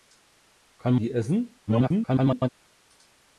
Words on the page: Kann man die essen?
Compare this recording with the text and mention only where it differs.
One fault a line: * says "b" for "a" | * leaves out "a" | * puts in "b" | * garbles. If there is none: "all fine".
* leaves out "man"
* garbles